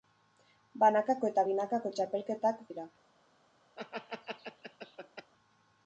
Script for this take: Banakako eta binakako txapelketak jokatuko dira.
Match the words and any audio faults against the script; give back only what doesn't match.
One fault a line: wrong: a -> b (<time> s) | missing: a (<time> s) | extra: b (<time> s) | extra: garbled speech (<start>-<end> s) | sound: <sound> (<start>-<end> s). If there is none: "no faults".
missing: jokatuko (2.6 s)
sound: laugh (3.8-5.3 s)